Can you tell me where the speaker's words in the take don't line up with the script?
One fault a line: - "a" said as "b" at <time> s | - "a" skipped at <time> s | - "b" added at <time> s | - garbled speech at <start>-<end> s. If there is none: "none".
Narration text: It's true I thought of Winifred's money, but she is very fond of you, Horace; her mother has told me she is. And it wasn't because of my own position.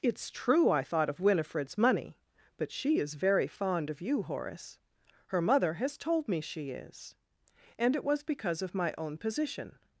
- "wasn't" said as "was" at 8.0 s